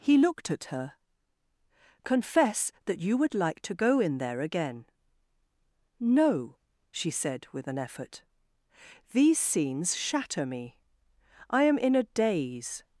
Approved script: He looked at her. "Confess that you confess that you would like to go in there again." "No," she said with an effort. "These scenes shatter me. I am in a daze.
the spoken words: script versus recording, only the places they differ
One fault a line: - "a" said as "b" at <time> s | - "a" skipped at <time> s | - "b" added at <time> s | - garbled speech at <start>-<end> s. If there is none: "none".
- "confess that you" skipped at 3.2 s